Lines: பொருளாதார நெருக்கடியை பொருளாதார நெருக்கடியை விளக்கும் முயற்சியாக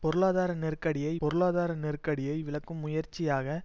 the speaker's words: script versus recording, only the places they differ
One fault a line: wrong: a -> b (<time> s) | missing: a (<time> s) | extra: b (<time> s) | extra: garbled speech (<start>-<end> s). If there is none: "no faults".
no faults